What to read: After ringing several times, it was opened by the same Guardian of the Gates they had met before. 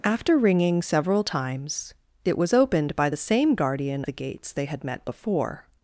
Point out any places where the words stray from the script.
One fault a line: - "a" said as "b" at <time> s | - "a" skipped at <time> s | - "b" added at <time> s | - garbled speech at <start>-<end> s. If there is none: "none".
- "of" skipped at 4.0 s